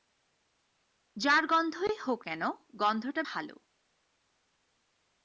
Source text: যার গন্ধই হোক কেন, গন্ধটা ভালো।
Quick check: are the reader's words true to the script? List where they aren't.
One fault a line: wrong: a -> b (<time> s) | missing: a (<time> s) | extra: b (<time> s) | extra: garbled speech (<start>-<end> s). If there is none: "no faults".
no faults